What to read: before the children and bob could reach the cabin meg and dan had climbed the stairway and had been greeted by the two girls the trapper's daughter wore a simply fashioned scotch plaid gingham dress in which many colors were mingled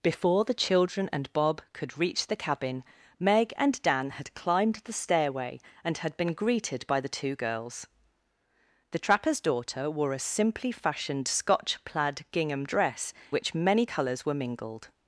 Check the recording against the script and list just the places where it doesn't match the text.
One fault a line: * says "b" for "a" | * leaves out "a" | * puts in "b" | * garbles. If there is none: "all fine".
* leaves out "in"